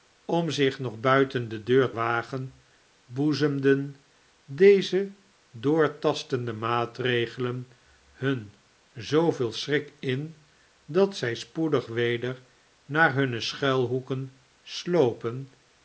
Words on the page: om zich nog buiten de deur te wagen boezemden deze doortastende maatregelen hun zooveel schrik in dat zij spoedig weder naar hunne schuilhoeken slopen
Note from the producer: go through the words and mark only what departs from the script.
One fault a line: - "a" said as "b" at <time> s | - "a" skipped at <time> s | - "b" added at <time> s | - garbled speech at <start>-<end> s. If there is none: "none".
- "te" skipped at 1.9 s